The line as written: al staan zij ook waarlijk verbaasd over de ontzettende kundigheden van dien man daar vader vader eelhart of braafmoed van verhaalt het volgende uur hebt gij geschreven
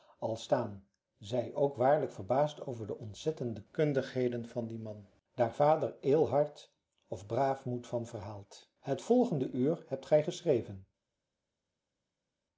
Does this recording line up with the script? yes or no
no